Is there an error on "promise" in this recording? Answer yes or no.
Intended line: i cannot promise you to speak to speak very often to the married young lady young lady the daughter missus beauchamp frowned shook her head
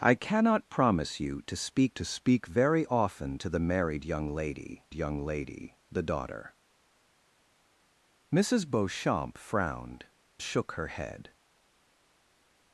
no